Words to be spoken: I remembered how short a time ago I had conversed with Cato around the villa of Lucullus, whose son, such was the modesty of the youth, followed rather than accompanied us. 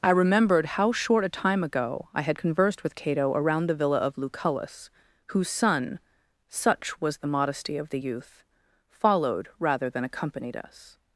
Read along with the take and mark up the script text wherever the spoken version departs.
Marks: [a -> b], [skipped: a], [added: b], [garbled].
I remembered how short a time ago I had conversed with Cato around the villa of Lucullus, whose son, such was the modesty of the youth, followed rather than accompanied us.